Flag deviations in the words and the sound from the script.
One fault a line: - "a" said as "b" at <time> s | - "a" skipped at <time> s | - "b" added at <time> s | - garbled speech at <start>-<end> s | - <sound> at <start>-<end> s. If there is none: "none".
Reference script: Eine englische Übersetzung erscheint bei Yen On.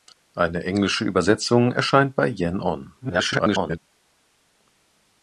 - garbled speech at 3.0-3.8 s